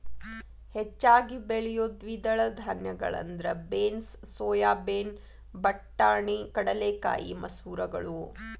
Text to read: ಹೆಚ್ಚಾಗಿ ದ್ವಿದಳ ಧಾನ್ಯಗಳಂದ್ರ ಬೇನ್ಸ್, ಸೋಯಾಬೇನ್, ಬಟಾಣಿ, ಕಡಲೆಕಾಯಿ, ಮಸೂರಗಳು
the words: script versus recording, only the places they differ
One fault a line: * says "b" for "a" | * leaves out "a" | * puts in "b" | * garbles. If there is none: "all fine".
* puts in "ಬೆಳಿಯೋ"